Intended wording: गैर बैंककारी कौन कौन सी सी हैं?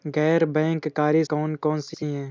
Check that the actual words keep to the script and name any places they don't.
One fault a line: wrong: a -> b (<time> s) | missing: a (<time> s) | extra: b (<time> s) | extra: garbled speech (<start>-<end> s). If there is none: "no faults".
no faults